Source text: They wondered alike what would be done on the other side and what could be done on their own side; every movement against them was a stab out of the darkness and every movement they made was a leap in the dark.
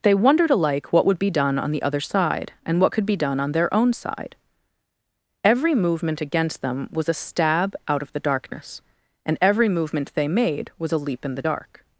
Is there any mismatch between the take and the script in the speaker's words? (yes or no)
no